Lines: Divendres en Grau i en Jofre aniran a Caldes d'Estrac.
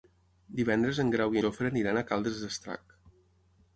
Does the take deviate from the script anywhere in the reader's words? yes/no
yes